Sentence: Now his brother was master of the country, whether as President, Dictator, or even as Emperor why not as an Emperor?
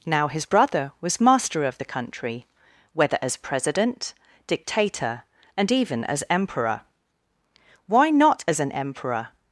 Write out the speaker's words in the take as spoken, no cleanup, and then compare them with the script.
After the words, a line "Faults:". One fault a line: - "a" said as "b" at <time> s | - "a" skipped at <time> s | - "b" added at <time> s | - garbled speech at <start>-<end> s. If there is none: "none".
Now his brother was master of the country, whether as President, Dictator, and even as Emperor why not as an Emperor?
Faults:
- "or" said as "and" at 5.6 s